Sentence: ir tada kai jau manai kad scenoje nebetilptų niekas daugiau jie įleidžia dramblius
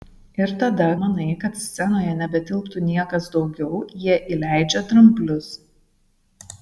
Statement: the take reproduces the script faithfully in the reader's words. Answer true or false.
false